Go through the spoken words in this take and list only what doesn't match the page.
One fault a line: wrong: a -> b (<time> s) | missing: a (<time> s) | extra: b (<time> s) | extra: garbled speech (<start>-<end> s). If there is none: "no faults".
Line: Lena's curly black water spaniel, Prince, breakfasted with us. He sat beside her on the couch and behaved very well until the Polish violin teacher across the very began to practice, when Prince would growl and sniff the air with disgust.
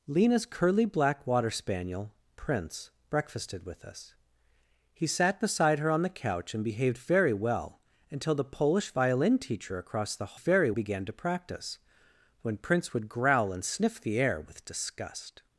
no faults